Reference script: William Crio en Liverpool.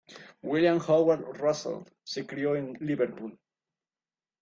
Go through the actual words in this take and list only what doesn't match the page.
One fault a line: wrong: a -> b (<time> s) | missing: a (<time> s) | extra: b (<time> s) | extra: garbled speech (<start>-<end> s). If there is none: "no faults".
extra: Howard Russell se (0.8 s)